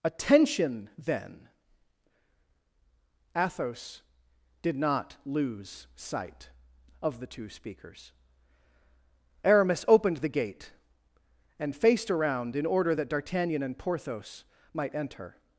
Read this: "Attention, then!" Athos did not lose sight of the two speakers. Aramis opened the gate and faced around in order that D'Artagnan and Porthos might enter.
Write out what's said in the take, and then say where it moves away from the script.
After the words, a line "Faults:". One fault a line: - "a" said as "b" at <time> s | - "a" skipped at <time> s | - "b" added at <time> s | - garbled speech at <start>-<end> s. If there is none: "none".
"Attention, then!" Athos did not lose sight of the two speakers. Aramis opened the gate and faced around in order that D'Artagnan and Porthos might enter.
Faults:
none